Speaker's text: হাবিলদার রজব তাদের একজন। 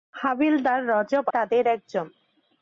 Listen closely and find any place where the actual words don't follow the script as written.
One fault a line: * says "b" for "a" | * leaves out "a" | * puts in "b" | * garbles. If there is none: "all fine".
all fine